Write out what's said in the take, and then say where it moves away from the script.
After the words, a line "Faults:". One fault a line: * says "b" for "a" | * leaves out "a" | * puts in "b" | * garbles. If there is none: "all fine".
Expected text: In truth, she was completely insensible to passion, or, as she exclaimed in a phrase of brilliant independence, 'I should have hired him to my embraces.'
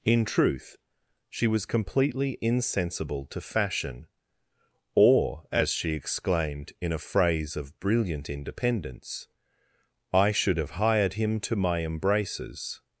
In truth, she was completely insensible to fashion, or, as she exclaimed in a phrase of brilliant independence, 'I should have hired him to my embraces.'
Faults:
* says "fashion" for "passion"